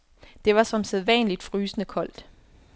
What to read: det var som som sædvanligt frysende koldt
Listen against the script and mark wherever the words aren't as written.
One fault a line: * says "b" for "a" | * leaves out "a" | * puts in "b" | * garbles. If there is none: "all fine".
* leaves out "som"